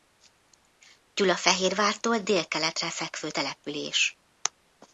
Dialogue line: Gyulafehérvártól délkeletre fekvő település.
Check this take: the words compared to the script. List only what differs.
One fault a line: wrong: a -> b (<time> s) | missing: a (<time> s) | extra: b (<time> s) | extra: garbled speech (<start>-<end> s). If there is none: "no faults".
no faults